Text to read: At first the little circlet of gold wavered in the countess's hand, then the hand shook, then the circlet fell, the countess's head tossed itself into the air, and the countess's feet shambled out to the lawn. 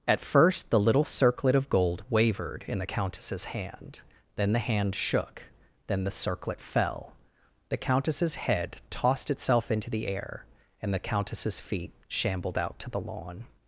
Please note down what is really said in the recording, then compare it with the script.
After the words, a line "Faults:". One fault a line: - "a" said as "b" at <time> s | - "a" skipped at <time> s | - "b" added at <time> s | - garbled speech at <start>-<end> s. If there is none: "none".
At first the little circlet of gold wavered in the countess's hand, then the hand shook, then the circlet fell, the countess's head tossed itself into the air, and the countess's feet shambled out to the lawn.
Faults:
none